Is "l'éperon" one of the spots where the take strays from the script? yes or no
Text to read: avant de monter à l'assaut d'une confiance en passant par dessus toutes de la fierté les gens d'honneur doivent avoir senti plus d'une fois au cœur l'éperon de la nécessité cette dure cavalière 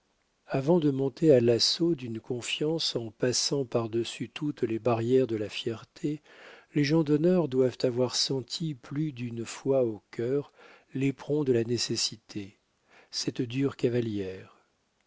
no